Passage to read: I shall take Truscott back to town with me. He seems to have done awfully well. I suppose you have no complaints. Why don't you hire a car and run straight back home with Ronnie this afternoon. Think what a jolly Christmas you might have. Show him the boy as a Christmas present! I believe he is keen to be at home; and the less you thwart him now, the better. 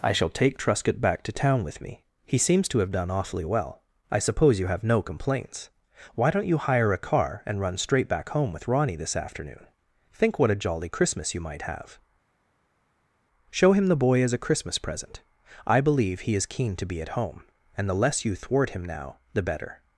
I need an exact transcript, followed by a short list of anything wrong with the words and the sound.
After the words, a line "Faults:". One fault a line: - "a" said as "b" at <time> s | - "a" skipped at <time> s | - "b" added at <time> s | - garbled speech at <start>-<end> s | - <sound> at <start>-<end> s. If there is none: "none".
I shall take Truscott back to town with me. He seems to have done awfully well. I suppose you have no complaints. Why don't you hire a car and run straight back home with Ronnie this afternoon. Think what a jolly Christmas you might have. Show him the boy as a Christmas present! I believe he is keen to be at home; and the less you thwart him now, the better.
Faults:
none